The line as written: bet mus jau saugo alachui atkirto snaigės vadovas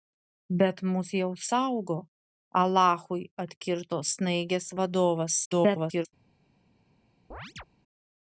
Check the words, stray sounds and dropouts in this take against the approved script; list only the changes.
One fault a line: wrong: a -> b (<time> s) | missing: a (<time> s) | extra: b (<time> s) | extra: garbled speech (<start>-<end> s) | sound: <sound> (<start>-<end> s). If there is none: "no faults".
extra: garbled speech (5.4-6.1 s)
sound: chirp (7.3-7.6 s)